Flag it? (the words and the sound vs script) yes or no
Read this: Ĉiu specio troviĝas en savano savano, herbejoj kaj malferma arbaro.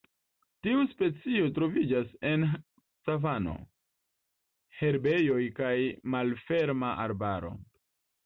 yes